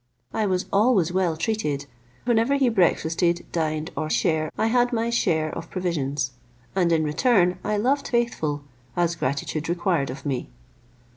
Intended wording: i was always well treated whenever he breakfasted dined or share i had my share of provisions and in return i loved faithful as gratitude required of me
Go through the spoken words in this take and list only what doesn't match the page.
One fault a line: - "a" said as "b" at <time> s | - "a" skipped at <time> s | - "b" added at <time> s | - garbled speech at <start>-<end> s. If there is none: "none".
none